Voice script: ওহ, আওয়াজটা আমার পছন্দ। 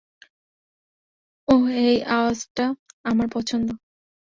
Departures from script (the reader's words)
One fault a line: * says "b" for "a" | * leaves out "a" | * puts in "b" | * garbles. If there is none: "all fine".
* puts in "এই"